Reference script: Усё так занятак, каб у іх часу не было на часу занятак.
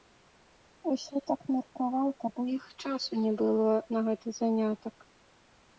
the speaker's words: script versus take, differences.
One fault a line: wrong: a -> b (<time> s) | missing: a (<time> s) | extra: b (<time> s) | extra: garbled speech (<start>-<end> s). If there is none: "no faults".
wrong: занятак -> меркаваў (1.6 s)
wrong: часу -> гэты (4.1 s)